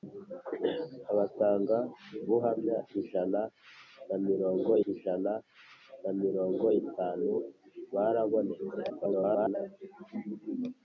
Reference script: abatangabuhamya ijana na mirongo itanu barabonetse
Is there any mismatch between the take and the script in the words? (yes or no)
yes